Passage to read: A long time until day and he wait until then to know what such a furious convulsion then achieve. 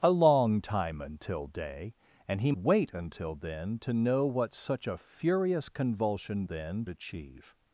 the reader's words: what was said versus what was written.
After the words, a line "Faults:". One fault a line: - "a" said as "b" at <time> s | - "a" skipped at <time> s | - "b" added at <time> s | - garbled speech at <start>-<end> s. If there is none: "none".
A long time until day and he wait until then to know what such a furious convulsion then achieve.
Faults:
none